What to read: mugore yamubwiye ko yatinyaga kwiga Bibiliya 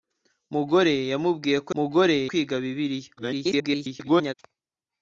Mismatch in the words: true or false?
true